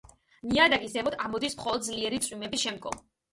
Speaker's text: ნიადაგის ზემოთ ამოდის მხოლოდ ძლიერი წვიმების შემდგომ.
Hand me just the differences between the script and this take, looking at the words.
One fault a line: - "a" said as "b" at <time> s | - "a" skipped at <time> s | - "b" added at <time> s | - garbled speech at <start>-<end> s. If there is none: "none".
none